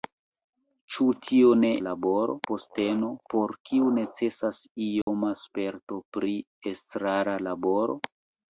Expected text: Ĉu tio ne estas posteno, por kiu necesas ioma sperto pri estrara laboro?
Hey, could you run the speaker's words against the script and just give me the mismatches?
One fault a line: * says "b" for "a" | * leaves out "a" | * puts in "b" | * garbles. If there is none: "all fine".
* says "laboro" for "estas"